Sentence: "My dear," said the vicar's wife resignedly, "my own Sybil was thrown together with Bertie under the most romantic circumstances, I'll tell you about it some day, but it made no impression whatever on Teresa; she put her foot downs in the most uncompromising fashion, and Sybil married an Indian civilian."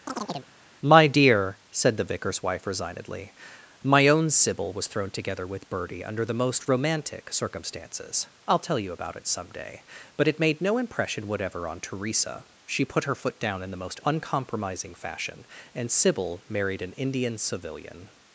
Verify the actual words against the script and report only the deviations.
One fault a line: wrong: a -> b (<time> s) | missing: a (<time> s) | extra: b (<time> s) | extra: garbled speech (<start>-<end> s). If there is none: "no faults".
wrong: downs -> down (13.4 s)